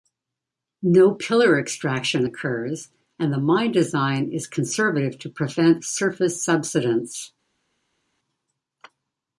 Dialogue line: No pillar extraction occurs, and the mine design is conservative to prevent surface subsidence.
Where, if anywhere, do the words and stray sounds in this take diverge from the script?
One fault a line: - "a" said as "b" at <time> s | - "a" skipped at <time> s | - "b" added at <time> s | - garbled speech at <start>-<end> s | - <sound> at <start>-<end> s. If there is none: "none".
none